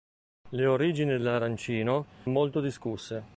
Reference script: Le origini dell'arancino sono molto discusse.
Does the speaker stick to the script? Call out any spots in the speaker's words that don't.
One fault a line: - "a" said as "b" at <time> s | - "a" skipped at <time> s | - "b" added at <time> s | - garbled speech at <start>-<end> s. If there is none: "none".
- "sono" skipped at 2.1 s